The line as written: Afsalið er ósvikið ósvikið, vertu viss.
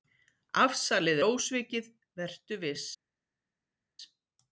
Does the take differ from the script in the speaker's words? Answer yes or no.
yes